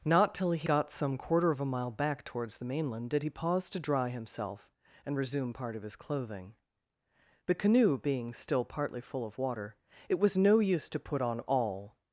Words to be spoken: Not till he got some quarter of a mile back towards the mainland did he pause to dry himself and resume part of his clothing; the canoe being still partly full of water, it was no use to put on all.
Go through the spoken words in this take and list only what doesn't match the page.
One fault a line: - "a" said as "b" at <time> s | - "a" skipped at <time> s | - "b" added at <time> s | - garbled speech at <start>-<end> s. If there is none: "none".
none